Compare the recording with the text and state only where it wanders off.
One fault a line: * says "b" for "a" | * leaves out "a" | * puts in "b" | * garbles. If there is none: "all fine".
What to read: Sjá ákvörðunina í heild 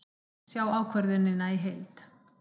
all fine